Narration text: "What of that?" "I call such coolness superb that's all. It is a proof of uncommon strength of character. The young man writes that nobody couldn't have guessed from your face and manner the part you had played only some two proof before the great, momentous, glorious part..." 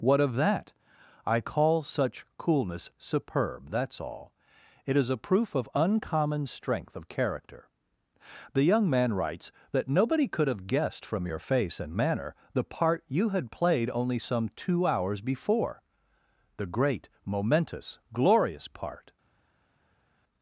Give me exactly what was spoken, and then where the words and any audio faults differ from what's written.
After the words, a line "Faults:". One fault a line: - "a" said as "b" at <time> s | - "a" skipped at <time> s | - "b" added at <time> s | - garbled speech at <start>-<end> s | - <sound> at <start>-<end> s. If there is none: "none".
"What of that?" "I call such coolness superb that's all. It is a proof of uncommon strength of character. The young man writes that nobody could have guessed from your face and manner the part you had played only some two hours before the great, momentous, glorious part..."
Faults:
- "couldn't" said as "could" at 10.3 s
- "proof" said as "hours" at 14.9 s